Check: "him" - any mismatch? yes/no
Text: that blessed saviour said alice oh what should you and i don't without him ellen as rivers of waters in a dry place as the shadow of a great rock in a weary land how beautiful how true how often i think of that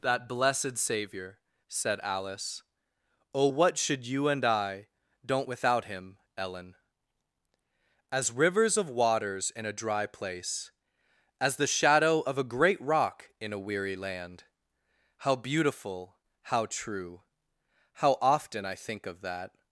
no